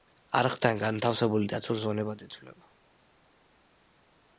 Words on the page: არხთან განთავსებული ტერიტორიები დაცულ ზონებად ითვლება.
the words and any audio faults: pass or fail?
fail